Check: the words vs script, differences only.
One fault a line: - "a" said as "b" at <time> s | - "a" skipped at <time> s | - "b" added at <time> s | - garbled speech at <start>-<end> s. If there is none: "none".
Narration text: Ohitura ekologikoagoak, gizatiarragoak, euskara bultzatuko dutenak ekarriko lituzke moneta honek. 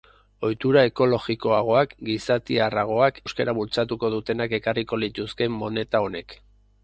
none